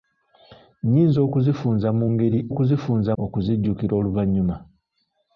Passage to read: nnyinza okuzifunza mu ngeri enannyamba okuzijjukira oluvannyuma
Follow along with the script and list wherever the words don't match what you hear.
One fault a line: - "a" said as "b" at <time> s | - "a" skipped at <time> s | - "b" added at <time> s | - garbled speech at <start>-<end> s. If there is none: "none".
- "enannyamba" said as "okuzifunza" at 2.5 s